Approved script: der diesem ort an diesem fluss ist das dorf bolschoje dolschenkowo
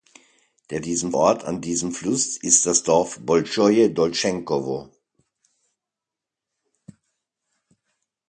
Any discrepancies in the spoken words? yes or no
no